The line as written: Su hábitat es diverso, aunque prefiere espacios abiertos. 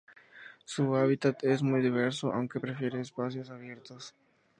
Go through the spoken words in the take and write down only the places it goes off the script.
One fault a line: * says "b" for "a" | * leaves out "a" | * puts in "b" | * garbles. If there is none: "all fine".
* puts in "muy"